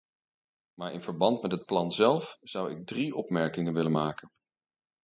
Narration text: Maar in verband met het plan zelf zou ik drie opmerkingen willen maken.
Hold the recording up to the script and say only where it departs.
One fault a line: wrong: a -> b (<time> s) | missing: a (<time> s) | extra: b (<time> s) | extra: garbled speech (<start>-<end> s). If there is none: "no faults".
no faults